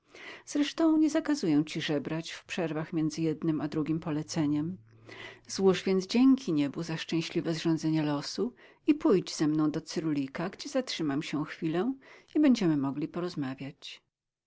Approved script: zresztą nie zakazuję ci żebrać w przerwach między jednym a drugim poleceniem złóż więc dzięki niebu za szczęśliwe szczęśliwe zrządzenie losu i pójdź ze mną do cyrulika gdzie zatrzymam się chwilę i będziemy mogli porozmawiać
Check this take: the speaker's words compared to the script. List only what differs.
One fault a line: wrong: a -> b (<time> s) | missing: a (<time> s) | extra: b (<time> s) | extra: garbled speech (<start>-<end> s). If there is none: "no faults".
missing: szczęśliwe (7.5 s)